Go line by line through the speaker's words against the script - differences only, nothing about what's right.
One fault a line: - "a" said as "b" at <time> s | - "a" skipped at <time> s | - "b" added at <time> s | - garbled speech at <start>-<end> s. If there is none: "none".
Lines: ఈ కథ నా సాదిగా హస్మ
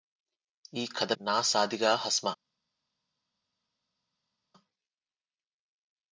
none